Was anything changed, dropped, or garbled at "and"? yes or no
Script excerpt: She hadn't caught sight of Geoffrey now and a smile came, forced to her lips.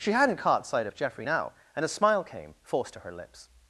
no